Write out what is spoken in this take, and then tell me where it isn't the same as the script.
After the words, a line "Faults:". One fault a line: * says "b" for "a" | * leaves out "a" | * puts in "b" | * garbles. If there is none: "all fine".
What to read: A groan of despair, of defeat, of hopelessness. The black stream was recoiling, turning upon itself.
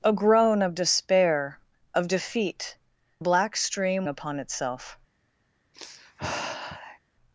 A groan of despair, of defeat, black stream upon itself.
Faults:
* leaves out "of hopelessness The"
* leaves out "was recoiling turning"